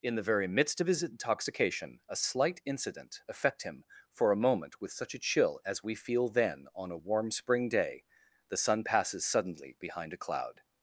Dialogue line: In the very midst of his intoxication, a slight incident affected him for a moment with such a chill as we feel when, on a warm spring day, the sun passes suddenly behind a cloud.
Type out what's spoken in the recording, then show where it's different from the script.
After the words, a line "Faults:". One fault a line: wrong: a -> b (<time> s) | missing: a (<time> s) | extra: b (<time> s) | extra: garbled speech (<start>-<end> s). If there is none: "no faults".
In the very midst of his intoxication, a slight incident affect him for a moment with such a chill as we feel then, on a warm spring day, the sun passes suddenly behind a cloud.
Faults:
wrong: affected -> affect (3.3 s)
wrong: when -> then (6.3 s)